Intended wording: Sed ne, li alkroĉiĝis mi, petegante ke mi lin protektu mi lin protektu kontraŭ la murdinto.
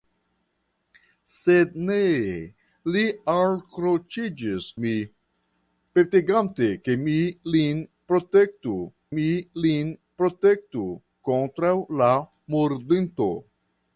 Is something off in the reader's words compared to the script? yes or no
no